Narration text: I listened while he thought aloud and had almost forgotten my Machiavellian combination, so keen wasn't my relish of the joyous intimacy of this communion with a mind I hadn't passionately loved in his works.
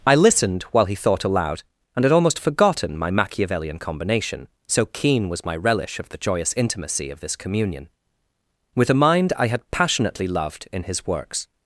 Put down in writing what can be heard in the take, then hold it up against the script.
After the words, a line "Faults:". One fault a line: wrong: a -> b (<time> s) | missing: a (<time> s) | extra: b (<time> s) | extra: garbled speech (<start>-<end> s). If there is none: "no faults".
I listened while he thought aloud and had almost forgotten my Machiavellian combination, so keen was my relish of the joyous intimacy of this communion with a mind I had passionately loved in his works.
Faults:
wrong: wasn't -> was (5.3 s)
wrong: hadn't -> had (9.5 s)